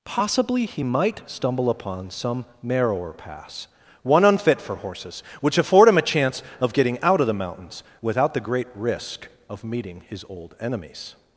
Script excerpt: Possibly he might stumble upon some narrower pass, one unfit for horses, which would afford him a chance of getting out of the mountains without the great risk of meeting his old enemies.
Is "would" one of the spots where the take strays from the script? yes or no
yes